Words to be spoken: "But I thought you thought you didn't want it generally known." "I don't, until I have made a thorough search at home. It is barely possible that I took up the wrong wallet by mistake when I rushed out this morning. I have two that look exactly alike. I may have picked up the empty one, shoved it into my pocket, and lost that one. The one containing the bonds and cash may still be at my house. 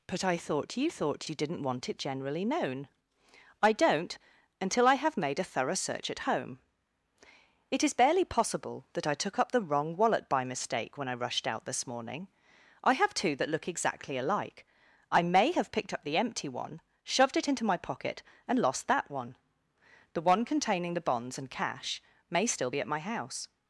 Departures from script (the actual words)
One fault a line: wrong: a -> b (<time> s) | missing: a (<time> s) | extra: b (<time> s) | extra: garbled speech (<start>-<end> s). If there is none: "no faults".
no faults